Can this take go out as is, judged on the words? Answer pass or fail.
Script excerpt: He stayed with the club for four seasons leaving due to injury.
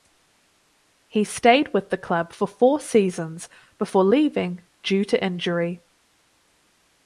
fail